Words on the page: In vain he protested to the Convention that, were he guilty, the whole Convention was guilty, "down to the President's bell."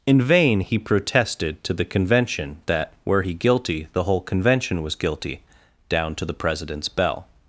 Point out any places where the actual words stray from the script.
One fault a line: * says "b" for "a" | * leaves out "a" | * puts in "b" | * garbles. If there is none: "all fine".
all fine